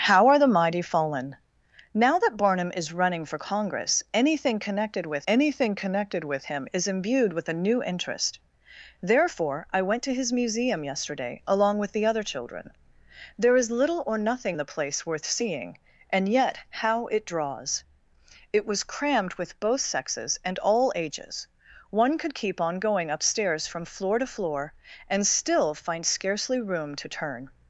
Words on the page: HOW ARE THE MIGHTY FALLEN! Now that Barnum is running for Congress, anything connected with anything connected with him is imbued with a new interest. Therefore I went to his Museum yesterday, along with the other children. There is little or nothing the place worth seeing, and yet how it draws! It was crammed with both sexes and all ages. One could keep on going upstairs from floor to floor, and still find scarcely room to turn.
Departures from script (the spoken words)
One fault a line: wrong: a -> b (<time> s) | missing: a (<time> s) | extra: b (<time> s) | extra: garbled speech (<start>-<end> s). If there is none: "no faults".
no faults